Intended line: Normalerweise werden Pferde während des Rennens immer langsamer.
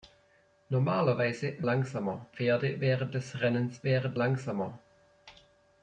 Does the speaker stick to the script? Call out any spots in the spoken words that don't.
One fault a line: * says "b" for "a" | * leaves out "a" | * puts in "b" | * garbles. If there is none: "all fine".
* says "langsamer" for "werden"
* says "während" for "immer"